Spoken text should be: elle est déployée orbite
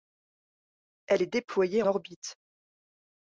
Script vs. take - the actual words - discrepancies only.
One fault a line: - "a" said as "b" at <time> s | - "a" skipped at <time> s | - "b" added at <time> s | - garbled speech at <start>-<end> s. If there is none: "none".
none